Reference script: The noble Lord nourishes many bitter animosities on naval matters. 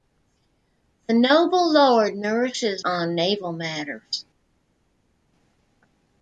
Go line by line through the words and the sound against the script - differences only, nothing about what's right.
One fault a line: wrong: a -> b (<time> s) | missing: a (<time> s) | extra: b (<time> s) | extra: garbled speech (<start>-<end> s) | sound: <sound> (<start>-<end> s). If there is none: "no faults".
missing: many bitter animosities (2.8 s)